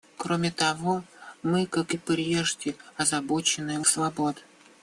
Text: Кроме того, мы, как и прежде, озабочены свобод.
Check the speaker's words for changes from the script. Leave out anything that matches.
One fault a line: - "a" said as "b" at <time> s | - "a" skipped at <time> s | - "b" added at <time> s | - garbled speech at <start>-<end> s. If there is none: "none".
none